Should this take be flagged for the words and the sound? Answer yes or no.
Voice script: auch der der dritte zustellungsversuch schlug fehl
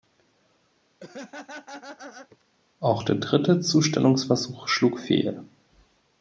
yes